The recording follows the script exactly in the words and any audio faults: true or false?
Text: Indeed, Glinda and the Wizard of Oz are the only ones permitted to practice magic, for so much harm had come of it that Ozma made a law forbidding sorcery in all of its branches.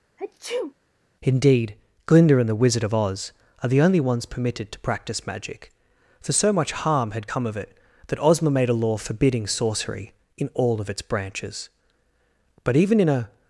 false